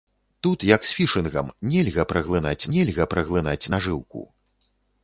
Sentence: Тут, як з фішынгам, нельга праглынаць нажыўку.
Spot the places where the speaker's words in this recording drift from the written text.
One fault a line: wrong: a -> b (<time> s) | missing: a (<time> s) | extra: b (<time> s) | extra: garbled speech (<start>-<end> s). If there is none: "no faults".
extra: нельга праглынаць (2.8 s)